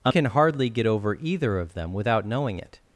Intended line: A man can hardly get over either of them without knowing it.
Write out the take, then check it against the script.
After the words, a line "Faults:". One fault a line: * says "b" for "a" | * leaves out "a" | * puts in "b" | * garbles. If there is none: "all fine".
A can hardly get over either of them without knowing it.
Faults:
* leaves out "man"